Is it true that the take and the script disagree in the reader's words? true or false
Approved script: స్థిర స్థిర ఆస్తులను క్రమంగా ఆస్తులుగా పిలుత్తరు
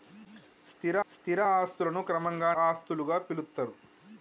false